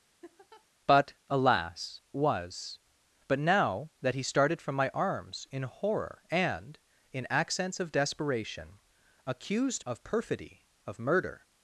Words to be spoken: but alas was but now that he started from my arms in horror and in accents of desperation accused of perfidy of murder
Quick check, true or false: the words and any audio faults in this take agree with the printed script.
false